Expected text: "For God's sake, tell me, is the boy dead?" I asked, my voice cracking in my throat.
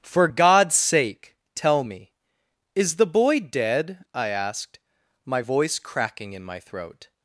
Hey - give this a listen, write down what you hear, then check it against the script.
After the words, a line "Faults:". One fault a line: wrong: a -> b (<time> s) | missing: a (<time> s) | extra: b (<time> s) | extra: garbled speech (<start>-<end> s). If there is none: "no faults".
"For God's sake, tell me, is the boy dead?" I asked, my voice cracking in my throat.
Faults:
no faults